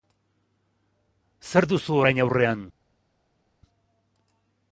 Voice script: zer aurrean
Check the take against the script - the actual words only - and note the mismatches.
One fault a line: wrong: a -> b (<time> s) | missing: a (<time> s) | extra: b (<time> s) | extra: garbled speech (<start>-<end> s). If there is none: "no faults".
extra: duzu orain (1.7 s)